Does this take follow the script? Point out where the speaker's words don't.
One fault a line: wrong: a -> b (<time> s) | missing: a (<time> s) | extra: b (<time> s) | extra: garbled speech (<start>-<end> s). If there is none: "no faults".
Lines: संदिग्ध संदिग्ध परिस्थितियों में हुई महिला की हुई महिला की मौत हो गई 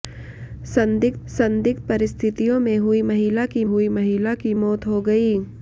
no faults